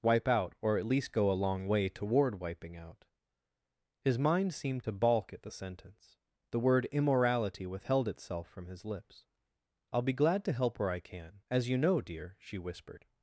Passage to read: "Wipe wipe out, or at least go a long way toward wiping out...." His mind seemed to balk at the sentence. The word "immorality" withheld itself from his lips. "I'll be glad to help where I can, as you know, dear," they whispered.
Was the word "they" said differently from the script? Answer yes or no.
yes